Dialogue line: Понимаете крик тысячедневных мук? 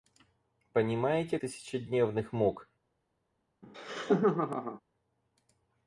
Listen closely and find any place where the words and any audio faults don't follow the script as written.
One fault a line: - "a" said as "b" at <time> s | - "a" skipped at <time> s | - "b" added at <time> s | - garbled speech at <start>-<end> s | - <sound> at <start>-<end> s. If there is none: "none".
- "крик" skipped at 1.4 s
- laugh at 3.6-4.8 s